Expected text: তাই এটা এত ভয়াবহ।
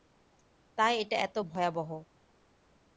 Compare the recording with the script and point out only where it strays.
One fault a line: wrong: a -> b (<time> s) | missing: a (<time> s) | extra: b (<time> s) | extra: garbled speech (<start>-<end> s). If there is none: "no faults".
no faults